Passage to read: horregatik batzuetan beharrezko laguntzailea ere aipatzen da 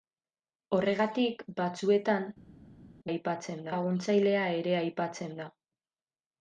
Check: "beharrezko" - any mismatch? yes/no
yes